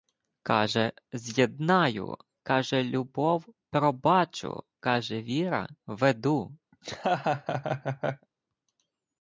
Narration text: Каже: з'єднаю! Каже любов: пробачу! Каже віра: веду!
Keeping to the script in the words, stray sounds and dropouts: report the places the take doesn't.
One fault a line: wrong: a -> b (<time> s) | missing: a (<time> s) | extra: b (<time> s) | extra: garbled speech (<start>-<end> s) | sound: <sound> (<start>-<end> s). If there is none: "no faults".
sound: laugh (6.7-8.3 s)